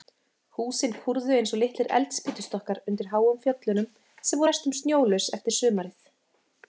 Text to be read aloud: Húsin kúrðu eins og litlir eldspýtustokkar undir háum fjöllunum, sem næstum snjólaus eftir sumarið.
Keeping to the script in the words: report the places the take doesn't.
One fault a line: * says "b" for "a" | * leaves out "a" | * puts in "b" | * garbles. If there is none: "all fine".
all fine